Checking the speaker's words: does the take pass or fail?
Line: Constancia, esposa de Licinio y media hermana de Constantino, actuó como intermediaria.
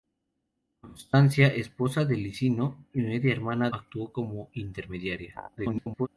fail